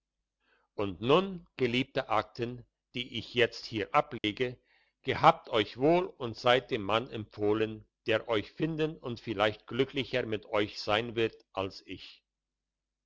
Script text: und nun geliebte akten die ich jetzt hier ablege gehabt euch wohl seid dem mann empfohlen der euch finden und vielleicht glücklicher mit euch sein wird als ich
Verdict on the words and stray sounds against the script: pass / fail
fail